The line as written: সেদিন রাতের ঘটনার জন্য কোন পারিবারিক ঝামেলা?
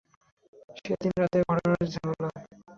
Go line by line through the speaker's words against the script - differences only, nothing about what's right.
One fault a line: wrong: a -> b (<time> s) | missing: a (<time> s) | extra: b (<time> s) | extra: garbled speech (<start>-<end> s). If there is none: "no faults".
missing: জন্য কোন পারিবারিক (1.8 s)